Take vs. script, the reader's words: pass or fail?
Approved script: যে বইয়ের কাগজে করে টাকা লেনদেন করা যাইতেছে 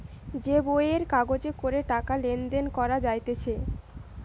pass